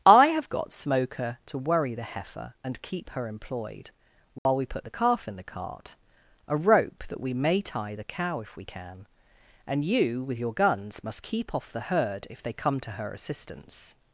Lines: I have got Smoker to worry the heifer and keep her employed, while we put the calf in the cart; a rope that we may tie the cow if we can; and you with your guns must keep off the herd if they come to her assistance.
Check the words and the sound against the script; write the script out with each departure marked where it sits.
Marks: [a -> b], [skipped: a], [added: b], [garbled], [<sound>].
I have got Smoker to worry the heifer and keep her employed, while [dropout] we put the calf in the cart; a rope that we may tie the cow if we can; and you with your guns must keep off the herd if they come to her assistance.